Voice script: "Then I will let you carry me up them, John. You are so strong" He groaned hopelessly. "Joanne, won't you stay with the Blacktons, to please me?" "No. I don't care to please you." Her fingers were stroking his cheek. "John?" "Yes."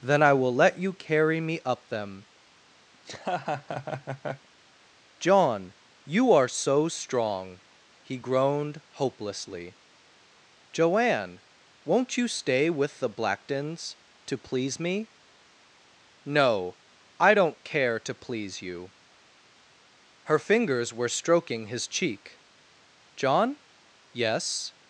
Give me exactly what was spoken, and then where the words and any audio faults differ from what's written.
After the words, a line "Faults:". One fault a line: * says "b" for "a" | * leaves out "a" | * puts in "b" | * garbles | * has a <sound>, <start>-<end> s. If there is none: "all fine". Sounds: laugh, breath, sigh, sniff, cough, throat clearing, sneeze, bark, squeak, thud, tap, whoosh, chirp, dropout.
"Then I will let you carry me up them, John. You are so strong" He groaned hopelessly. "Joanne, won't you stay with the Blacktons, to please me?" "No. I don't care to please you." Her fingers were stroking his cheek. "John?" "Yes."
Faults:
* has a laugh, 2.9-4.5 s